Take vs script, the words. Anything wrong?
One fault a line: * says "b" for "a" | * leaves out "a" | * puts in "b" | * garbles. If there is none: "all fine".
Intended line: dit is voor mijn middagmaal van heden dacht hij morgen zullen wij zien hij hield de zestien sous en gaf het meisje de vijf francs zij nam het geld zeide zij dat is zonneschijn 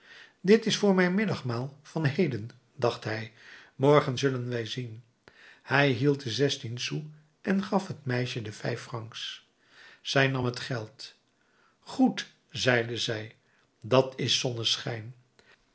* puts in "goed"